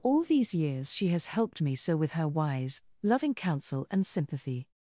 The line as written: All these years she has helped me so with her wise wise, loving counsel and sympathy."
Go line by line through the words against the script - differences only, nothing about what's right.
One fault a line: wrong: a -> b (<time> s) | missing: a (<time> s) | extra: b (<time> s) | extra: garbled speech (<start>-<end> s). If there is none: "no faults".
missing: wise (2.8 s)